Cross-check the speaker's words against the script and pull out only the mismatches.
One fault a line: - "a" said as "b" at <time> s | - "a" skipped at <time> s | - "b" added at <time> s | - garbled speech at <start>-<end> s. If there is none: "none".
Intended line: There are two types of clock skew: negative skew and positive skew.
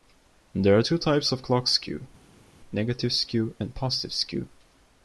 none